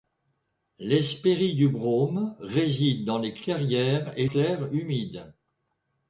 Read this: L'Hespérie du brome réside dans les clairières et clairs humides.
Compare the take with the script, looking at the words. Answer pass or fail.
pass